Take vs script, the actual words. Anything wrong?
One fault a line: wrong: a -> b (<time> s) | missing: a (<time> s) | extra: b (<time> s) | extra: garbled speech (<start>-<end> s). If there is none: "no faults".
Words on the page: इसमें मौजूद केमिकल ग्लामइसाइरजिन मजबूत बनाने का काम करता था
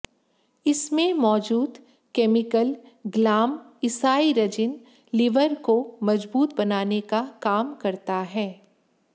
extra: लिवर को (5.1 s)
wrong: था -> है (8.3 s)